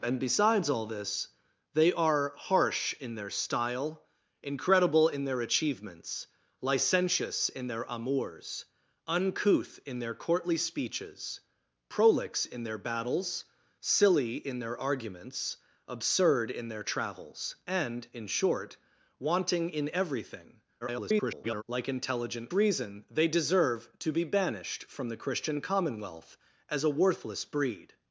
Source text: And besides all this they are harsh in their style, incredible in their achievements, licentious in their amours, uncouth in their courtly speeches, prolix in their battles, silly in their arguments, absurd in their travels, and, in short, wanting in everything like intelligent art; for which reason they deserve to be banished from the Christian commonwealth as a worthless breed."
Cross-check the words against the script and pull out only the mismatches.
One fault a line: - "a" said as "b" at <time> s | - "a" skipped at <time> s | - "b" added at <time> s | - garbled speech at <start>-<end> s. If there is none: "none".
- garbled speech at 20.8-21.6 s
- "art for which" skipped at 22.5 s